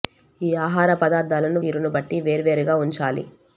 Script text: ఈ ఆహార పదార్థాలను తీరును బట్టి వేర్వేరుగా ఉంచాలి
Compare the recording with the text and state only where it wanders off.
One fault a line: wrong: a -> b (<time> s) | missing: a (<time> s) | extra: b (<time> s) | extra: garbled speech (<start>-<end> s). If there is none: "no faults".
no faults